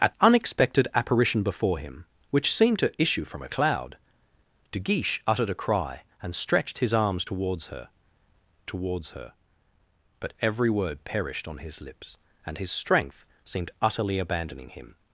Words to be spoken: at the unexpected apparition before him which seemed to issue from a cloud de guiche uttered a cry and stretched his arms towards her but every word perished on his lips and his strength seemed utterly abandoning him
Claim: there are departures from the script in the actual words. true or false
true